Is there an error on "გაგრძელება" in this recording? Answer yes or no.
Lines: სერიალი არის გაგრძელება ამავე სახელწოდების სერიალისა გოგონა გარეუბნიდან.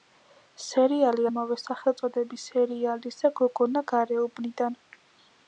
yes